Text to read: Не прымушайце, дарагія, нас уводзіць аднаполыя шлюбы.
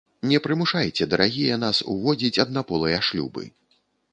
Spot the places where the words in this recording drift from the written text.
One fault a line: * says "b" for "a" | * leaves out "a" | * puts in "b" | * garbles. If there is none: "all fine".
all fine